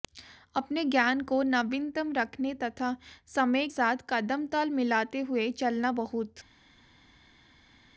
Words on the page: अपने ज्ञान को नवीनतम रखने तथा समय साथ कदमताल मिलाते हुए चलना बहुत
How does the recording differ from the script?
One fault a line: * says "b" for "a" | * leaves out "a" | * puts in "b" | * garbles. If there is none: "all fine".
all fine